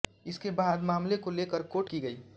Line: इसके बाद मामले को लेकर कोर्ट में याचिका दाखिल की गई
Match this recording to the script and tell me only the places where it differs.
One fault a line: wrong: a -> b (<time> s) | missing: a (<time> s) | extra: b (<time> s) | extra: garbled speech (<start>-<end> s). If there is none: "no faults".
missing: में याचिका दाखिल (1.9 s)